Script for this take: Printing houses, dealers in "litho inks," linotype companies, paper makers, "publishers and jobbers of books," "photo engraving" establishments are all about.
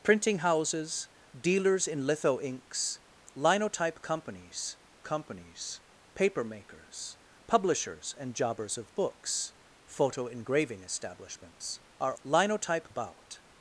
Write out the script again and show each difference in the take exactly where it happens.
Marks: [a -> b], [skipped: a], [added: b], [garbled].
Printing houses, dealers in "litho inks," linotype companies, [added: companies] paper makers, "publishers and jobbers of books," "photo engraving" establishments are [all -> linotype] about.